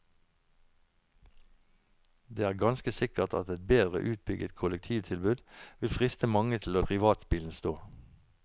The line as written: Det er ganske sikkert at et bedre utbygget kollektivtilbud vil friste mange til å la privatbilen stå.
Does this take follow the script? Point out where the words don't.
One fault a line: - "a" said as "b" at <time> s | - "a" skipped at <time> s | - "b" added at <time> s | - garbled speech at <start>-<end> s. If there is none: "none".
- "la" skipped at 6.8 s